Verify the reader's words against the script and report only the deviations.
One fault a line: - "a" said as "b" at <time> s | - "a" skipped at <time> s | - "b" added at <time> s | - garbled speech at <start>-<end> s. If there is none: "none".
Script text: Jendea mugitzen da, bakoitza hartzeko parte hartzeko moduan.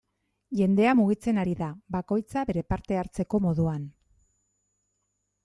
- "ari" added at 1.4 s
- "hartzeko" said as "bere" at 2.5 s